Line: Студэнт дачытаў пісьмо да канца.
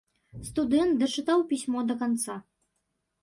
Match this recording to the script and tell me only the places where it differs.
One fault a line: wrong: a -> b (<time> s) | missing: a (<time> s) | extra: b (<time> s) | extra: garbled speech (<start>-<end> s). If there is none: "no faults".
no faults